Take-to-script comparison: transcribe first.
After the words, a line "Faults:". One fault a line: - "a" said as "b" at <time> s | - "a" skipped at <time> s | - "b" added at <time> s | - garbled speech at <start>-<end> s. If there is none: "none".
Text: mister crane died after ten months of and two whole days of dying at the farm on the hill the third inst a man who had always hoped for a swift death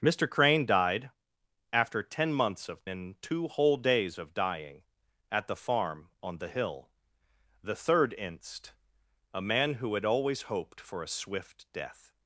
mister crane died after ten months of and two whole days of dying at the farm on the hill the third inst a man who had always hoped for a swift death
Faults:
none